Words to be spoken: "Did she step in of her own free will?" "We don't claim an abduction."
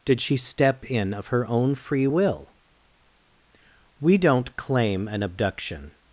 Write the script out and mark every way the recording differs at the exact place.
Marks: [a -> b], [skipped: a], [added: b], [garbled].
"Did she step in of her own free will?" "We don't claim an abduction."